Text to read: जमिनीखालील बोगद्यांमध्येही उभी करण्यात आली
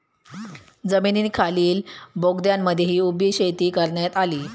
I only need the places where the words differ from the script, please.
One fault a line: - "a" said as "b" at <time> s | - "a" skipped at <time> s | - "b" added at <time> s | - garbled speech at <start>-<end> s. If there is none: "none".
- "शेती" added at 3.3 s